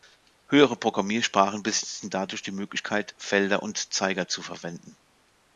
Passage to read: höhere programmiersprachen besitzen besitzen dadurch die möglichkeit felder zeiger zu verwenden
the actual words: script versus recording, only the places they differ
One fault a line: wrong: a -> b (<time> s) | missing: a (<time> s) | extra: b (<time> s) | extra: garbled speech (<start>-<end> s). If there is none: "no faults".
missing: besitzen (2.1 s)
extra: und (3.6 s)